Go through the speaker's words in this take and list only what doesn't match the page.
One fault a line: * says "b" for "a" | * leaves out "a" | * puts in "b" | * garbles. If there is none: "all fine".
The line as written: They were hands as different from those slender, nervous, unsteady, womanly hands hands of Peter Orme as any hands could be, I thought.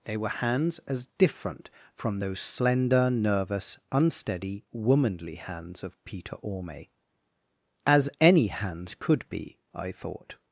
* leaves out "hands"